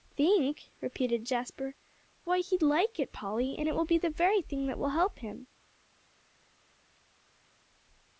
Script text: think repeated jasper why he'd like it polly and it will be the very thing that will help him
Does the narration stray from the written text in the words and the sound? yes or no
no